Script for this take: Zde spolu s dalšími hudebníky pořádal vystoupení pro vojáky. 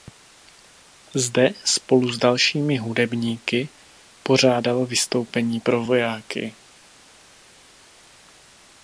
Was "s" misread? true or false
false